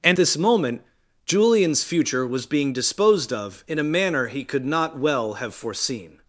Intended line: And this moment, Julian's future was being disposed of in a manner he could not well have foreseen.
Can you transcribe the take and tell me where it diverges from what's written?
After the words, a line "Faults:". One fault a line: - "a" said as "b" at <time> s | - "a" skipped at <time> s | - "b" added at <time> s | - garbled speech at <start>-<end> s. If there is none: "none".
And this moment, Julian's future was being disposed of in a manner he could not well have foreseen.
Faults:
none